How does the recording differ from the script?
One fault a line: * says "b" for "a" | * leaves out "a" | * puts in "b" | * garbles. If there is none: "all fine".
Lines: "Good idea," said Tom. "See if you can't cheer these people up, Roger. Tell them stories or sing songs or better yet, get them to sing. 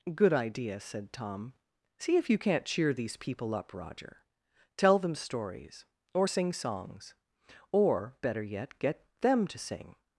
all fine